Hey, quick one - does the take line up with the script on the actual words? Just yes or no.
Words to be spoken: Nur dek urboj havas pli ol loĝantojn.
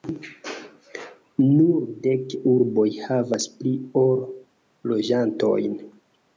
yes